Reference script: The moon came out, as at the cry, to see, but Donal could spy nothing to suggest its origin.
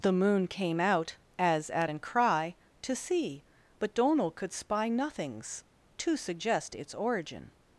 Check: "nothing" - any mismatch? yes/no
yes